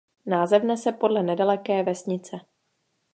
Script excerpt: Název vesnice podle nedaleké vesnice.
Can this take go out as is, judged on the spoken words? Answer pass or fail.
fail